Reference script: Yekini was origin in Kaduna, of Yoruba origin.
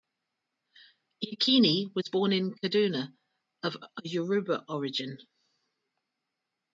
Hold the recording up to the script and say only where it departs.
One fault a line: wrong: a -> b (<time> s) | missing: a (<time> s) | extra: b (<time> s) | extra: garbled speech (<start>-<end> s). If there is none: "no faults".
wrong: origin -> born (2.1 s)